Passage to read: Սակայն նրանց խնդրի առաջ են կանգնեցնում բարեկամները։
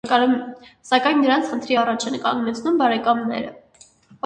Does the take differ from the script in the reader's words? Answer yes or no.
no